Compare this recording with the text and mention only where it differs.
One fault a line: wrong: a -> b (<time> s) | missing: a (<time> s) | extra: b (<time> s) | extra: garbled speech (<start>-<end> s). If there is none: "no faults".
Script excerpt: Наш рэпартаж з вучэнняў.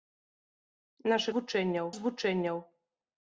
wrong: рэпартаж -> вучэнняў (1.4 s)